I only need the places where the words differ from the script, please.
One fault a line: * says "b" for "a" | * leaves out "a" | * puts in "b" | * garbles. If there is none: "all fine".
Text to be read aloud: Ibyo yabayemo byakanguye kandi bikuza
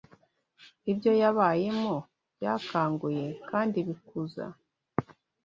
all fine